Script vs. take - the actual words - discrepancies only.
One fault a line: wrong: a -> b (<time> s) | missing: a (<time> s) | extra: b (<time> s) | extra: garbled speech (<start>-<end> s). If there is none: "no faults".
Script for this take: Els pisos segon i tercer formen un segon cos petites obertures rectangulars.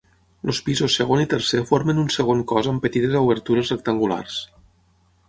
extra: amb (2.7 s)